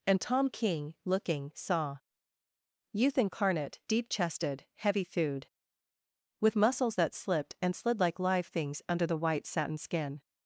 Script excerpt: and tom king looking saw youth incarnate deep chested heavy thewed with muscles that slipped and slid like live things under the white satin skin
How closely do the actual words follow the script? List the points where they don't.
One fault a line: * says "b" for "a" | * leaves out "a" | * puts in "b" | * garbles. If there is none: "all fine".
all fine